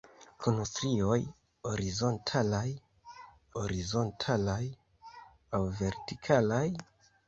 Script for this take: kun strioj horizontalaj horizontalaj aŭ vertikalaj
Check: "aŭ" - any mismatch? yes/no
no